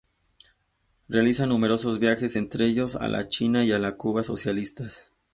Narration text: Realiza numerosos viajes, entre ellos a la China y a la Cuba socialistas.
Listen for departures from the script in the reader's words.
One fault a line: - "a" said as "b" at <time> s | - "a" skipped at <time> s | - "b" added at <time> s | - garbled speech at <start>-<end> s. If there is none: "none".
none